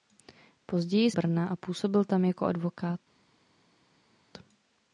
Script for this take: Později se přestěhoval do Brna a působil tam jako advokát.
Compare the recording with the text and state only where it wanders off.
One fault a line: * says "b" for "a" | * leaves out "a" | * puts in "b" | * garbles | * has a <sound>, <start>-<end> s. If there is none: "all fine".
* leaves out "se přestěhoval do"